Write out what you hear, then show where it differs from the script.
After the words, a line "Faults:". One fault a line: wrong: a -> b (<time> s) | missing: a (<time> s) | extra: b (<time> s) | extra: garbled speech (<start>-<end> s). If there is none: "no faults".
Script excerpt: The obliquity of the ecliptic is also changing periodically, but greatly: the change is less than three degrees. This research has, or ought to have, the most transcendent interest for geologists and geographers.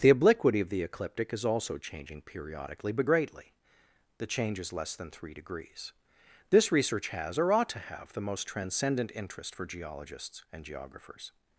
The obliquity of the ecliptic is also changing periodically, but greatly: the change is less than three degrees. This research has, or ought to have, the most transcendent interest for geologists and geographers.
Faults:
no faults